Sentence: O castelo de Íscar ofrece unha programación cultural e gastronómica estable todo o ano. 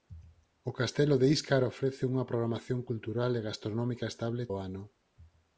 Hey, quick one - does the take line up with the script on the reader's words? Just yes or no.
no